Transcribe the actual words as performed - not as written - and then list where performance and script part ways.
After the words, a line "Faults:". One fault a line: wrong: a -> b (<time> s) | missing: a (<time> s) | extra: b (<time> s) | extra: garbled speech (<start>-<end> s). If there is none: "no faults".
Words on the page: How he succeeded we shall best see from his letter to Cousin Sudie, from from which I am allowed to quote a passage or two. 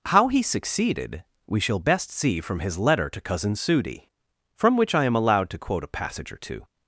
How he succeeded we shall best see from his letter to Cousin Sudie, from which I am allowed to quote a passage or two.
Faults:
missing: from (4.8 s)